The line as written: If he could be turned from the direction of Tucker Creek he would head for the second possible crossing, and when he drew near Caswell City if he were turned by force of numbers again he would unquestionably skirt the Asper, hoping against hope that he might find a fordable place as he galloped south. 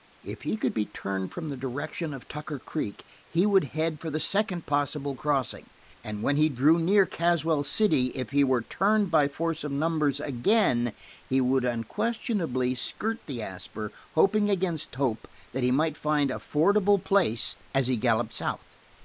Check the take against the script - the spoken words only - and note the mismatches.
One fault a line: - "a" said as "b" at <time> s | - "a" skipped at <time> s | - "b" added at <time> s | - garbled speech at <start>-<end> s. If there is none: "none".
none